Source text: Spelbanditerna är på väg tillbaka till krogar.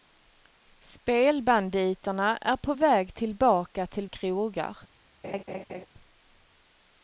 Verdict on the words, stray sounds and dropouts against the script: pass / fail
fail